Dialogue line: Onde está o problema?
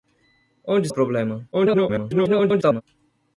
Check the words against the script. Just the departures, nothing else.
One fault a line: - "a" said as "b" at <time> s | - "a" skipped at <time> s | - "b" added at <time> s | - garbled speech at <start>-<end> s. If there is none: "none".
- "está" skipped at 0.9 s
- garbled speech at 1.5-2.8 s